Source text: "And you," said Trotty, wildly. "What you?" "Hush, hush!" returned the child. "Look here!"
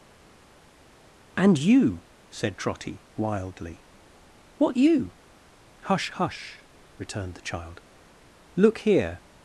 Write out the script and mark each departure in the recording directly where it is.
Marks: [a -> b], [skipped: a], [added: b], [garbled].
"And you," said Trotty, wildly. "What you?" "Hush, hush!" returned the child. "Look here!"